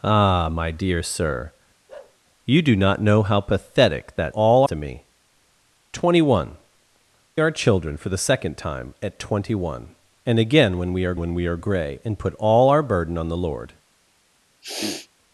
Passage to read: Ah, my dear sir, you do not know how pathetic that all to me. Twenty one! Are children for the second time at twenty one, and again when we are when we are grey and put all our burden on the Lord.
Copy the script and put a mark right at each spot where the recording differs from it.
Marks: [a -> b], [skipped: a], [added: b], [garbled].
Ah, my dear sir, you do not know how pathetic that all to me. Twenty one! Are children for the second time at twenty one, and again when we are when we are grey and put all our burden on the Lord.